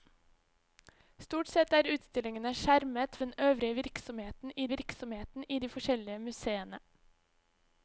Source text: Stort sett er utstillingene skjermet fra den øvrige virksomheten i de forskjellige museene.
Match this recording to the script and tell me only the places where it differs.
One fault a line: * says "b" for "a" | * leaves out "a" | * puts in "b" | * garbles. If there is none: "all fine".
* leaves out "fra"
* puts in "virksomheten i"